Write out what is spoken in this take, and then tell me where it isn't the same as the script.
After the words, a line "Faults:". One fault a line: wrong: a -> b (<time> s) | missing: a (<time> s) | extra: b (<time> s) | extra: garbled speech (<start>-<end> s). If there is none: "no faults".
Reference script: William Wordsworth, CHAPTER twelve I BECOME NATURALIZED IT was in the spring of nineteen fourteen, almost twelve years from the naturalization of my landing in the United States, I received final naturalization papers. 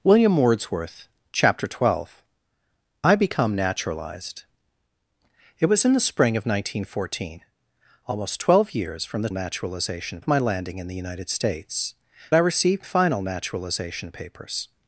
William Wordsworth, CHAPTER twelve I BECOME NATURALIZED IT was in the spring of nineteen fourteen, almost twelve years from the naturalization of my landing in the United States, I received final naturalization papers.
Faults:
no faults